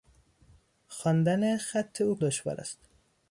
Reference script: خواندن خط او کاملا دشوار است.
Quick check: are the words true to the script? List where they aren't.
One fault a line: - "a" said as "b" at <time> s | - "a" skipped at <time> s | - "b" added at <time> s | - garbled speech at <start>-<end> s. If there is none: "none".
- "کاملا" skipped at 2.2 s